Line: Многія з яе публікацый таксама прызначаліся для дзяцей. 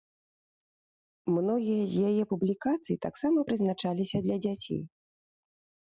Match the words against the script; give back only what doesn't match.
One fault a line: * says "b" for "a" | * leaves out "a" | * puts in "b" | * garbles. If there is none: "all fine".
all fine